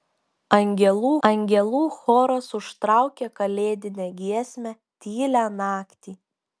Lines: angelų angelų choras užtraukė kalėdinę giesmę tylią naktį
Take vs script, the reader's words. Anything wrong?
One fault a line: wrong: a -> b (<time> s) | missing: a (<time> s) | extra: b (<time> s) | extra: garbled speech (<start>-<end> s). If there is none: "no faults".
no faults